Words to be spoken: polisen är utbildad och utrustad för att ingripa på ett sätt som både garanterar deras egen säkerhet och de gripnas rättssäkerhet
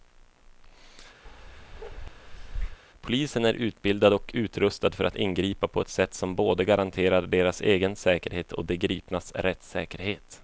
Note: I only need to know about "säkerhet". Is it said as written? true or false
true